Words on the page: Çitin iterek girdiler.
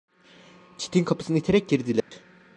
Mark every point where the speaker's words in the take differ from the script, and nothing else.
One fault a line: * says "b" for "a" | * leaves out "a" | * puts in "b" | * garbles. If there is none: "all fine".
* puts in "kapısını"